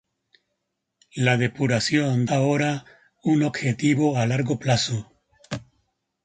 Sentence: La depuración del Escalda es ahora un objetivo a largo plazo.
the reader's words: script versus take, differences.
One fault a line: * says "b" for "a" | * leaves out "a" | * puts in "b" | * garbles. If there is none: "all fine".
* leaves out "del Escalda es"